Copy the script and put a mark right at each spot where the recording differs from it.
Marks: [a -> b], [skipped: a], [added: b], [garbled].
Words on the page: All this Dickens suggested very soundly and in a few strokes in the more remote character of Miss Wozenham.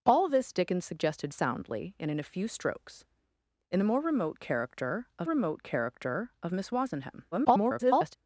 All this Dickens suggested [skipped: very] soundly and in a few strokes in the more remote character of [added: remote character of] Miss Wozenham. [garbled]